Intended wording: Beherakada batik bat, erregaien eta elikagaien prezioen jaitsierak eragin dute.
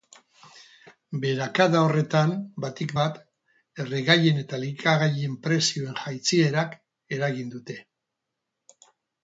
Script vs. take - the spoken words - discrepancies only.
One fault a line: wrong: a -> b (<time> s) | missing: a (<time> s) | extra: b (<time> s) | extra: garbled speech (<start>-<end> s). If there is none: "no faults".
extra: horretan (1.9 s)